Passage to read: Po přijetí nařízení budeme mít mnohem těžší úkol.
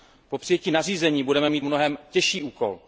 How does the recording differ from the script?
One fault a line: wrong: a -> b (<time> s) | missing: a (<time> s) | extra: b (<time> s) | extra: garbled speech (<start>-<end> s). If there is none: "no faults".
no faults